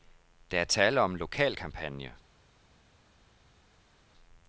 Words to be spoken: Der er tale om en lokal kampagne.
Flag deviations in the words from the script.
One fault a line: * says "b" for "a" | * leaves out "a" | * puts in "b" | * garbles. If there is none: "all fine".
all fine